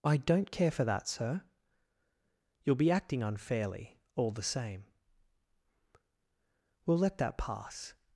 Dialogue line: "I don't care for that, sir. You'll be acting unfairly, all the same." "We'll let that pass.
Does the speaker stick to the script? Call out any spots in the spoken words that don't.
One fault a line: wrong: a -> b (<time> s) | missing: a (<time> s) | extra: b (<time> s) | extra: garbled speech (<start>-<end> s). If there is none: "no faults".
no faults